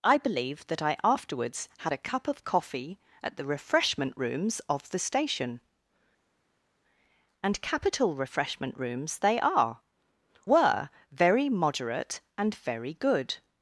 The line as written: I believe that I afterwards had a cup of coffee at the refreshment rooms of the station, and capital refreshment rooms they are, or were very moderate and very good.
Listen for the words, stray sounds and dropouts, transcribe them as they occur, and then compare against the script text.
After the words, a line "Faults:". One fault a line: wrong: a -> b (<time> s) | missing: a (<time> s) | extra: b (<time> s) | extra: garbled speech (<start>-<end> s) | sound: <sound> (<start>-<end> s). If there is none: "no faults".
I believe that I afterwards had a cup of coffee at the refreshment rooms of the station, and capital refreshment rooms they are, were very moderate and very good.
Faults:
missing: or (9.8 s)